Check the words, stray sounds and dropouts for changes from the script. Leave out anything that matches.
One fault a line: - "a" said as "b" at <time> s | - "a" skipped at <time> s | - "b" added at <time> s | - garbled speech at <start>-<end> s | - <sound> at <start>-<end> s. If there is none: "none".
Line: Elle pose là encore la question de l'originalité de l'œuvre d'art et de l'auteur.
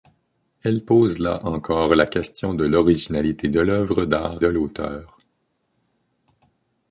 - "et" skipped at 4.4 s